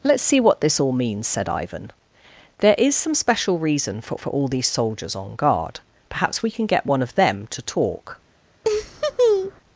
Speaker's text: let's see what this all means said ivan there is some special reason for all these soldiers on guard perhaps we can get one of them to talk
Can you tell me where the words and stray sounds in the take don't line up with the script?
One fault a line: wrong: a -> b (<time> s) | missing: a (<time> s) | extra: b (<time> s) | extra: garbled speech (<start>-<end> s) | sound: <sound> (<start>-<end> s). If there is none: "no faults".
extra: for (4.2 s)
sound: laugh (8.6-9.6 s)